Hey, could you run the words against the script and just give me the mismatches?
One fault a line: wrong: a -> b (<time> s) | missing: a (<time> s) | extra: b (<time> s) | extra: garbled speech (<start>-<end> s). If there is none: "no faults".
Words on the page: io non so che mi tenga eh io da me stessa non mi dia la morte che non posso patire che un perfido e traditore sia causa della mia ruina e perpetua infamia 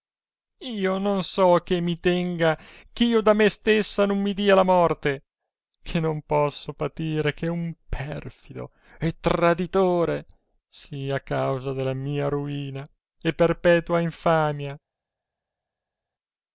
no faults